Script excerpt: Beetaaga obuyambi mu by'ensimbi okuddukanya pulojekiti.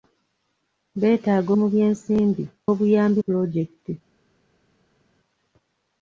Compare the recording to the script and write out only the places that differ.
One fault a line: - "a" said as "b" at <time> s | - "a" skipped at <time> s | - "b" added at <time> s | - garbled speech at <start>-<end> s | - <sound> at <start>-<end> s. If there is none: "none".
- "obuyambi" skipped at 1.5 s
- "okuddukanya" said as "obuyambi" at 2.7 s